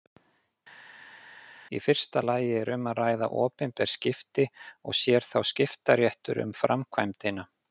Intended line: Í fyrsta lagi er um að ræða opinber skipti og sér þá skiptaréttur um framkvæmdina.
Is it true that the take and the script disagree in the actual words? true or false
false